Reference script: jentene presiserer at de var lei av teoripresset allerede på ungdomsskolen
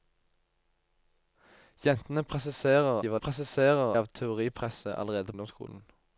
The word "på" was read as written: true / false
false